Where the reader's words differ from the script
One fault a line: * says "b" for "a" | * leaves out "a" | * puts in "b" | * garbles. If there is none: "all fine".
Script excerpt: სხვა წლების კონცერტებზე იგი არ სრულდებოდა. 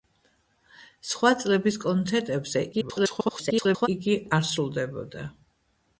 * garbles